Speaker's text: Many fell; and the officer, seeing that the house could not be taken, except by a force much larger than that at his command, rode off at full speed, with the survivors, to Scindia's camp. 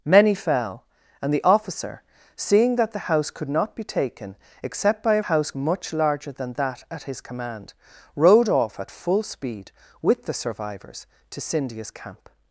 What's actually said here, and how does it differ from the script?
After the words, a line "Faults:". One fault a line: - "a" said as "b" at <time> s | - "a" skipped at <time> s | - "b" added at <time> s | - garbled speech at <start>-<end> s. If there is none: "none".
Many fell; and the officer, seeing that the house could not be taken, except by a house much larger than that at his command, rode off at full speed, with the survivors, to Scindia's camp.
Faults:
- "force" said as "house" at 5.2 s